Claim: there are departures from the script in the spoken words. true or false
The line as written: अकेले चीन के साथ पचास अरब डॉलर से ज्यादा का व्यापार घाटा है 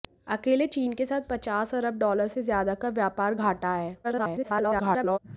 true